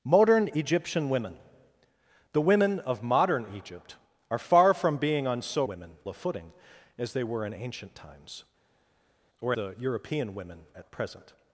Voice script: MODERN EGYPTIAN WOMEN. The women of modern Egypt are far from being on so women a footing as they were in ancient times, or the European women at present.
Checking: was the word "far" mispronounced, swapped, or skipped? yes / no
no